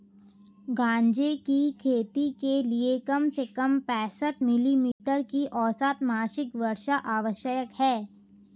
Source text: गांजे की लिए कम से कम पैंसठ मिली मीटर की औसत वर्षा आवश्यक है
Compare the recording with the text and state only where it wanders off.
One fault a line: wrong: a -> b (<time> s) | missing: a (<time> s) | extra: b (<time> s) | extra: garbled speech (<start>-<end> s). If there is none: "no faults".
extra: खेती के (1.8 s)
extra: मासिक (6.0 s)